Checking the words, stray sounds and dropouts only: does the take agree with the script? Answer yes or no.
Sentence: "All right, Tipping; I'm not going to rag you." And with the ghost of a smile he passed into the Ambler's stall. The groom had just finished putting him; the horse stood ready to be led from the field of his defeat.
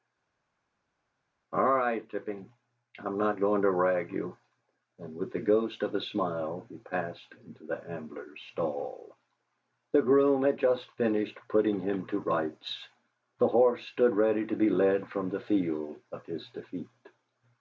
no